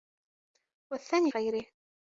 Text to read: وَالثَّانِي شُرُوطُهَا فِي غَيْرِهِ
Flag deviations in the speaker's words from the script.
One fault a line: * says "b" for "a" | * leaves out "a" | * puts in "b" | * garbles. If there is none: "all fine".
* leaves out "شُرُوطُهَا فِي"